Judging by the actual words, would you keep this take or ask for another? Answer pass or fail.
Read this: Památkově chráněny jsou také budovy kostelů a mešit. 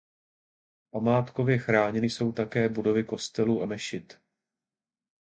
pass